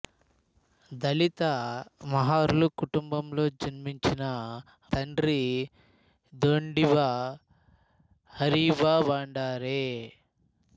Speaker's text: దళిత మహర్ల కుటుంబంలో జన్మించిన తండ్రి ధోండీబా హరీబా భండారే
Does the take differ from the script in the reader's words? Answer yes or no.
no